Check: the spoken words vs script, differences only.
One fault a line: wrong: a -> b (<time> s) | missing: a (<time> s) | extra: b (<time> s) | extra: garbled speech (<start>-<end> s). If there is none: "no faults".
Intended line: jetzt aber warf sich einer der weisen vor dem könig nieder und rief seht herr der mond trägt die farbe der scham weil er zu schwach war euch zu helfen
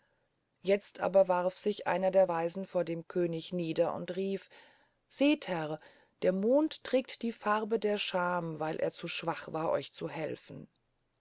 no faults